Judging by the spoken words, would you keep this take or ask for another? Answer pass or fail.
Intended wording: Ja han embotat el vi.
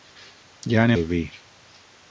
fail